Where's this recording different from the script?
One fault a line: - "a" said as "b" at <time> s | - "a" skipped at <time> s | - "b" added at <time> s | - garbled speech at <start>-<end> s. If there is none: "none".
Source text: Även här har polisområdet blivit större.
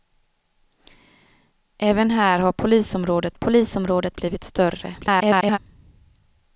- "polisområdet" added at 3.3 s
- garbled speech at 5.0-5.6 s